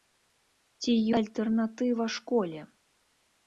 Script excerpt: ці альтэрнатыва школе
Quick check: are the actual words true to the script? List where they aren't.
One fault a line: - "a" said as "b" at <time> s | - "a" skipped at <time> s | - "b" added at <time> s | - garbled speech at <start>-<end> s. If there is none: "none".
none